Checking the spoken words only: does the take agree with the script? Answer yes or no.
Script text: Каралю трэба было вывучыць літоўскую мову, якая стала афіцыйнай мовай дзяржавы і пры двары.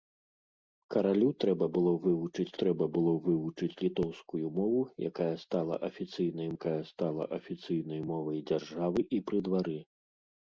no